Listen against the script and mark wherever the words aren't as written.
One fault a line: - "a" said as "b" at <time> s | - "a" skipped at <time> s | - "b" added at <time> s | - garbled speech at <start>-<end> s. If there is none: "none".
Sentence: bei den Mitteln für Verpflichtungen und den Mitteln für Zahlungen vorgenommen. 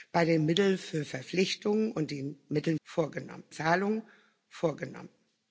- "für" said as "vorgenommen" at 2.8 s